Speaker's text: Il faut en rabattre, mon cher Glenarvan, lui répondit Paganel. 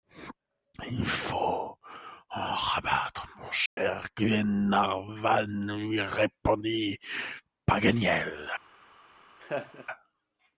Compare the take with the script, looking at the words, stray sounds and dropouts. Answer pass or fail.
fail